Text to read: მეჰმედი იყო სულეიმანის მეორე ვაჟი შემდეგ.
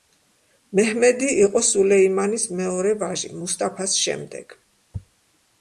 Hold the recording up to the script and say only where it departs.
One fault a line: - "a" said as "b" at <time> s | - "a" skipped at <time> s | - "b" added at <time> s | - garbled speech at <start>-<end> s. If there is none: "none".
- "მუსტაფას" added at 3.4 s